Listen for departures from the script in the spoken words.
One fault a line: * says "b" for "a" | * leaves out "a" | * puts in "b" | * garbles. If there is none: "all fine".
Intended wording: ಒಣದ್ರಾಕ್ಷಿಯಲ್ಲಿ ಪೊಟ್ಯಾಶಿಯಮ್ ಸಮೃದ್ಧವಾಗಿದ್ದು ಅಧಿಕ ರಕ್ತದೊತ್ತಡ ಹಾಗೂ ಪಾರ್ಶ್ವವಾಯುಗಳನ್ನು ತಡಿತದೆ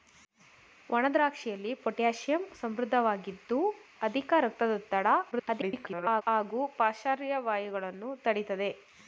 * garbles